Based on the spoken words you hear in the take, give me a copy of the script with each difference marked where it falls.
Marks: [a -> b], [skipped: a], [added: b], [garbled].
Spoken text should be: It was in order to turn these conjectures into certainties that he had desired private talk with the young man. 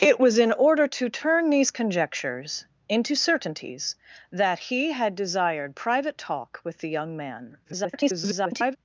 It was in order to turn these conjectures into certainties that he had desired private talk with the young man. [garbled]